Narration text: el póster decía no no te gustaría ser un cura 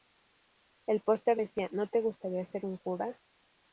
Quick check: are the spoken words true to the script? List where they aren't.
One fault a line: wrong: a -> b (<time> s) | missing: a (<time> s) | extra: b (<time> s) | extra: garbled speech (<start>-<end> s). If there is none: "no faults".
missing: no (1.9 s)